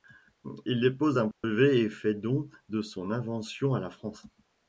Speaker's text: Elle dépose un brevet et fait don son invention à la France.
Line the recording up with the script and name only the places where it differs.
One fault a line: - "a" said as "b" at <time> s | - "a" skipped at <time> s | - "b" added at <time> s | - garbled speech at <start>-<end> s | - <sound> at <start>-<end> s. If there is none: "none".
- "Elle" said as "Il" at 0.7 s
- dropout at 1.3-1.4 s
- "de" added at 2.7 s